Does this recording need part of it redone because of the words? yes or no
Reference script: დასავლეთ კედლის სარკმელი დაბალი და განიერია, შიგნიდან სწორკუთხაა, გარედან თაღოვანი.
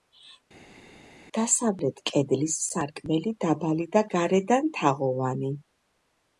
yes